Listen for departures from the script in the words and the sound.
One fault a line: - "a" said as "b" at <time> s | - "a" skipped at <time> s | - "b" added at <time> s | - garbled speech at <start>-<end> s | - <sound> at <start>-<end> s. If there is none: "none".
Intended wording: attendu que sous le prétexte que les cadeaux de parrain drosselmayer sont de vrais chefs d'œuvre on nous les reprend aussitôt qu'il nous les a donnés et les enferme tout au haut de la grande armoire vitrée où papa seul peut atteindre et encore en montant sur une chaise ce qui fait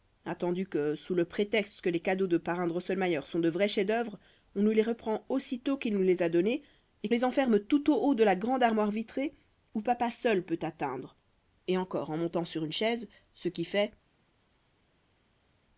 none